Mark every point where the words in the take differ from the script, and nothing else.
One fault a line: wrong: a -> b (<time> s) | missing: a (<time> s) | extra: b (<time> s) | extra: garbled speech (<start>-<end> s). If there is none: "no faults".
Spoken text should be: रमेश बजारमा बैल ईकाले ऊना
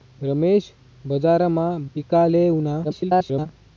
missing: बैल (1.7 s)
extra: garbled speech (2.8-3.5 s)